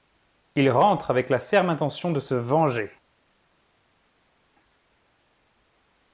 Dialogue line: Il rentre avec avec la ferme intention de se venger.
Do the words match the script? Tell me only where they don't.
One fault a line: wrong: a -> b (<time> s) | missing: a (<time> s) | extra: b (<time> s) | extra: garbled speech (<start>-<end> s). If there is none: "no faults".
missing: avec (1.3 s)